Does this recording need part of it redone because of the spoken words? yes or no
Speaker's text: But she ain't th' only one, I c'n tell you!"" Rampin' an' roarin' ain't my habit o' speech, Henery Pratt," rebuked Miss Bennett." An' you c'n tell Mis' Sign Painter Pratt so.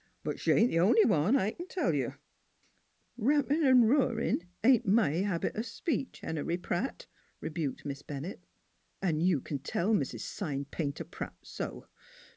no